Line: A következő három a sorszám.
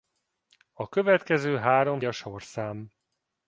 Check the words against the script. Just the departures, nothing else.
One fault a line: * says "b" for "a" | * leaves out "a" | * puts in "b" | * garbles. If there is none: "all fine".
all fine